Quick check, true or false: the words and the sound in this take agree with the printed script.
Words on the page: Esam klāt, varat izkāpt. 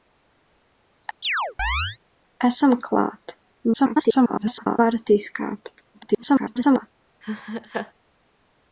false